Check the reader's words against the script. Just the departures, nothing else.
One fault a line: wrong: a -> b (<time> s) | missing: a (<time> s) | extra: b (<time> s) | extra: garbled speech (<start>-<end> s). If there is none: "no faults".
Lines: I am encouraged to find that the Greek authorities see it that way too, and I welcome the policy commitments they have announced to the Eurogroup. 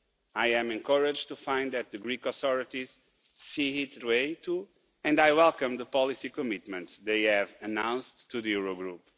missing: that (4.0 s)